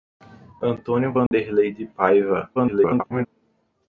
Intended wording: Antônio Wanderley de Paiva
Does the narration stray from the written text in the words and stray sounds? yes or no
yes